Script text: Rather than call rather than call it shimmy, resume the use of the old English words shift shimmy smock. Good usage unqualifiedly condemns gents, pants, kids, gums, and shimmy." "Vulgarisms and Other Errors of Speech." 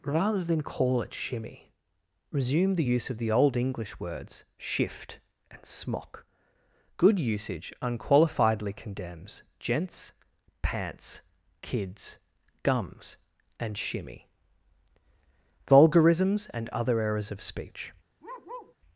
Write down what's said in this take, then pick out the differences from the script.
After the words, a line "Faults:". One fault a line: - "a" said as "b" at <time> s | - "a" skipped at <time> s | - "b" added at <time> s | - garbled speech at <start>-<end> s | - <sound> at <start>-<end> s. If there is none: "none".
Rather than call it shimmy, resume the use of the old English words shift and smock. Good usage unqualifiedly condemns gents, pants, kids, gums, and shimmy." "Vulgarisms and Other Errors of Speech."
Faults:
- "rather than call" skipped at 1.0 s
- "shimmy" said as "and" at 5.5 s
- bark at 18.2-18.8 s